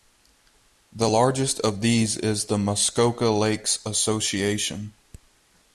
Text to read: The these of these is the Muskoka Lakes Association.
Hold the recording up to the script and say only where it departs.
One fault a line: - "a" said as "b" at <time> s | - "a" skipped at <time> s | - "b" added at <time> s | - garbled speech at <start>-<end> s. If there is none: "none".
- "these" said as "largest" at 1.0 s